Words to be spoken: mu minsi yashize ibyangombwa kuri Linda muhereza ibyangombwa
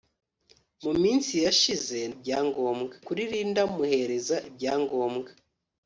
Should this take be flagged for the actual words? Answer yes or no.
no